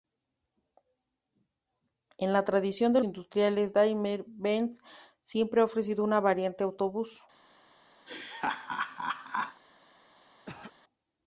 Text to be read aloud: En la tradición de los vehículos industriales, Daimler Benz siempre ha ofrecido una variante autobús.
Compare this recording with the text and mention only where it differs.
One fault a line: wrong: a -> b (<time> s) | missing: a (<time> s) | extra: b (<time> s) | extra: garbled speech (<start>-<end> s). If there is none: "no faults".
missing: los vehículos (3.0 s)